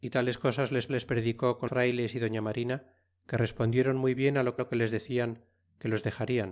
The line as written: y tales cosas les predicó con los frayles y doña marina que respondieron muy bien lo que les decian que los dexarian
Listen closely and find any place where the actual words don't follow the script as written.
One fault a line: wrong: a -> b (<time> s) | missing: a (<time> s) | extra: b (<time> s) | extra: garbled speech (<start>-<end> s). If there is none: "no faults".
extra: les (0.9 s)
missing: los (1.7 s)
extra: lo (4.5 s)